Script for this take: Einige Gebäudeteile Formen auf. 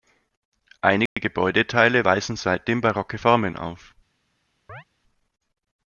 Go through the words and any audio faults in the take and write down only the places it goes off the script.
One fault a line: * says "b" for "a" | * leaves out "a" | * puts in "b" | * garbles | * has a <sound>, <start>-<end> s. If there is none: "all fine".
* has a dropout, 1.1-1.2 s
* puts in "weisen seitdem barocke"
* has a chirp, 4.7-4.8 s